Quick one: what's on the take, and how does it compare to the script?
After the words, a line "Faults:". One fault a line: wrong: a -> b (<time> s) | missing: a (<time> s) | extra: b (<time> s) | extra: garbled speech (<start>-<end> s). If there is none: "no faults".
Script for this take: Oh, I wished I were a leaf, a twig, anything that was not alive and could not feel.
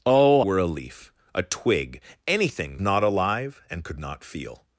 Oh, were a leaf, a twig, anything not alive and could not feel.
Faults:
missing: I wished I (0.4 s)
missing: that was (2.8 s)